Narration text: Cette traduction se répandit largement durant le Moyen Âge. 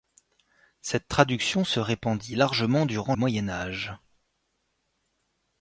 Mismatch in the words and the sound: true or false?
true